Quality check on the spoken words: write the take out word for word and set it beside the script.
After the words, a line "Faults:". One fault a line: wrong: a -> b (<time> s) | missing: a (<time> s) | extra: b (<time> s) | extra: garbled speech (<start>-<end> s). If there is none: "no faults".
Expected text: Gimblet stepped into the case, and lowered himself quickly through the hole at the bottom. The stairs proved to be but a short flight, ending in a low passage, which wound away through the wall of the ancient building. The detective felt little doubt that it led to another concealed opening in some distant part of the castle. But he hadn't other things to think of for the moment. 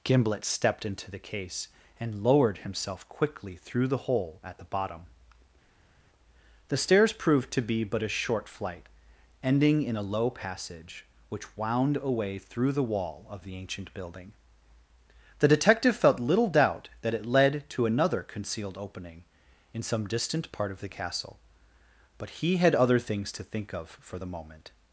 Gimblet stepped into the case, and lowered himself quickly through the hole at the bottom. The stairs proved to be but a short flight, ending in a low passage, which wound away through the wall of the ancient building. The detective felt little doubt that it led to another concealed opening in some distant part of the castle. But he had other things to think of for the moment.
Faults:
wrong: hadn't -> had (22.6 s)